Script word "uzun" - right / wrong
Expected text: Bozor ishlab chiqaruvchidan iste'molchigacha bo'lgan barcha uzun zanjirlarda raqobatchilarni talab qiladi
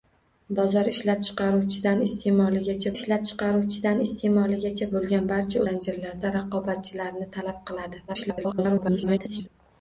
wrong